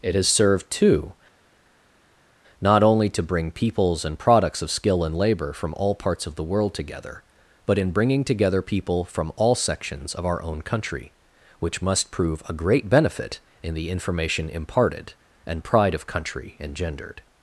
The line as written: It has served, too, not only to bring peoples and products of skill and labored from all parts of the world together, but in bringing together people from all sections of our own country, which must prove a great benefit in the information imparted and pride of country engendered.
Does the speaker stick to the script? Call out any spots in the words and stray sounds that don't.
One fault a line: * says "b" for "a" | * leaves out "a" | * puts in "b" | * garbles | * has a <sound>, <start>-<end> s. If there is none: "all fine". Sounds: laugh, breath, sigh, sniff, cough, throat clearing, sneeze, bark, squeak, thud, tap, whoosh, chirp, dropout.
* says "labor" for "labored"